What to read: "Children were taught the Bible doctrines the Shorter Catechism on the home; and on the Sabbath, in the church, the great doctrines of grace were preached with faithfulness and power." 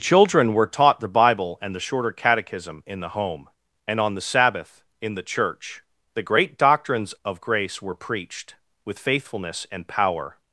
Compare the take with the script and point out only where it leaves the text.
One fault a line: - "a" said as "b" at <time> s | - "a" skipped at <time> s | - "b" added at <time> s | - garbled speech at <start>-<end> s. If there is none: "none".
- "doctrines" said as "and" at 1.6 s
- "on" said as "in" at 2.9 s